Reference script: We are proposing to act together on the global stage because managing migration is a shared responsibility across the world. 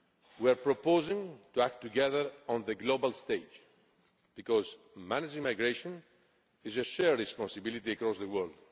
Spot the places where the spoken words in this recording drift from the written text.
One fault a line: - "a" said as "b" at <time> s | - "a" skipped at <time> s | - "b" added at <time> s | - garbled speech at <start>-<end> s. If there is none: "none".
none